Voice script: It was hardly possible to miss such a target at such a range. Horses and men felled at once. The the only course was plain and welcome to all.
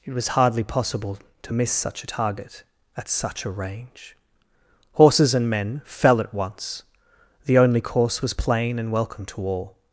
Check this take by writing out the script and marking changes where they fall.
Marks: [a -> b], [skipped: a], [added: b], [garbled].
It was hardly possible to miss such a target at such a range. Horses and men [felled -> fell] at once. The [skipped: the] only course was plain and welcome to all.